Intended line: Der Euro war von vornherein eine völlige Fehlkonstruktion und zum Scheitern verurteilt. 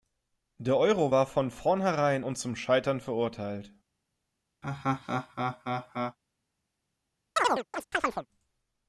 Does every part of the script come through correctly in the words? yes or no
no